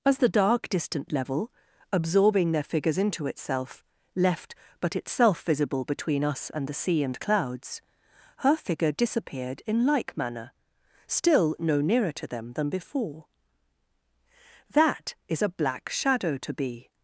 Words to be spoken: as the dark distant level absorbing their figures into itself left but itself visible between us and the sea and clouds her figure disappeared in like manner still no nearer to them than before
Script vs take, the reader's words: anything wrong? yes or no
yes